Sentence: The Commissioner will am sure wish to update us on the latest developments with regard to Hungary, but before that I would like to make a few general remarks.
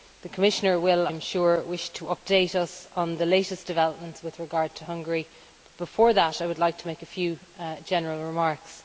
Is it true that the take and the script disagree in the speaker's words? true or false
false